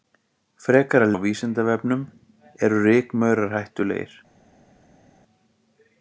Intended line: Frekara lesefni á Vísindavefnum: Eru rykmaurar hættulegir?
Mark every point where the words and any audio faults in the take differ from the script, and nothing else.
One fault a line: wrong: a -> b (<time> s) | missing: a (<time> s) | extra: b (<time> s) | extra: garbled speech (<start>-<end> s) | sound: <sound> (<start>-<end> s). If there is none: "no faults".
missing: lesefni (1.1 s)